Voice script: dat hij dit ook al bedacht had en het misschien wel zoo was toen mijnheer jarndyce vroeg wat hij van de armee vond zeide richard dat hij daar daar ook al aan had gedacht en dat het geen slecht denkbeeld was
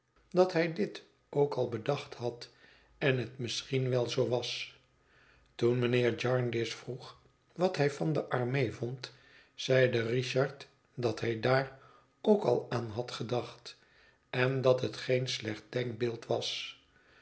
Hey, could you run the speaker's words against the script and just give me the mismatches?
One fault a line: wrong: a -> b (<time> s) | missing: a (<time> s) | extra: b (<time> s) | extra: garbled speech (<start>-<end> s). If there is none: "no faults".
missing: daar (11.8 s)